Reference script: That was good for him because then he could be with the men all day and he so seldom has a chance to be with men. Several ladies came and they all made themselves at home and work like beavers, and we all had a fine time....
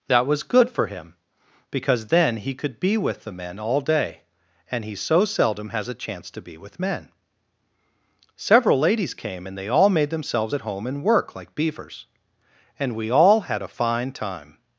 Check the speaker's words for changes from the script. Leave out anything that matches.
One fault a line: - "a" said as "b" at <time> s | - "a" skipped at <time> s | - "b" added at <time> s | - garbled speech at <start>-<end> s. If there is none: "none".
none